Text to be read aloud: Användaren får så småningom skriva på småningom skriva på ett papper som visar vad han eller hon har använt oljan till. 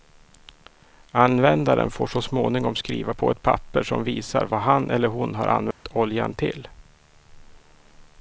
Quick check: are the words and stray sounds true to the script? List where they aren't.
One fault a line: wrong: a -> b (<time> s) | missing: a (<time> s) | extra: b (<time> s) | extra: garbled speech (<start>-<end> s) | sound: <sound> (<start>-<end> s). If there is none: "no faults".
missing: småningom skriva på (3.3 s)
sound: dropout (5.7-5.9 s)